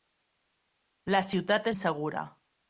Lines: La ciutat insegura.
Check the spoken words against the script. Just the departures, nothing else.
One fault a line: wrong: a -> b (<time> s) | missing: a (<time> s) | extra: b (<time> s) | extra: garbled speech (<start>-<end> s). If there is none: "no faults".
no faults